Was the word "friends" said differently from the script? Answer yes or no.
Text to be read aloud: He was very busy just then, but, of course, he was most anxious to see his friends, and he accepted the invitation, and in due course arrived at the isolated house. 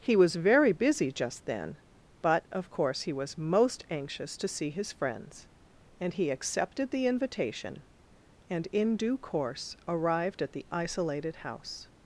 no